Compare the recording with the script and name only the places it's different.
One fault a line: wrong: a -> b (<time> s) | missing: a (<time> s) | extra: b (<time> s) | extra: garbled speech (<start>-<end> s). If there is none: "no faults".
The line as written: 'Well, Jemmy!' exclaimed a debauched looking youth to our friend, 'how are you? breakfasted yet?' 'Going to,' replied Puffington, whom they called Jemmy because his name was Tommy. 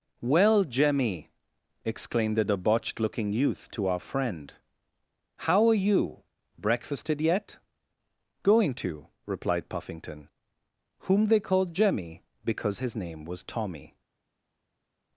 wrong: a -> the (2.4 s)